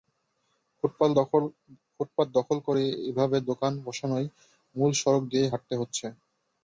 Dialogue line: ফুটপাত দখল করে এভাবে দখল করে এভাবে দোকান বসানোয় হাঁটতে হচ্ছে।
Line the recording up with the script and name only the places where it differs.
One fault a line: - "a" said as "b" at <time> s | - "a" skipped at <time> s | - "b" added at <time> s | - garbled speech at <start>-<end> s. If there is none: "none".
- "দখল করে এভাবে দোকান বসানোয়" said as "দোকান বসানোয় মূল সড়ক দিয়েই" at 3.5 s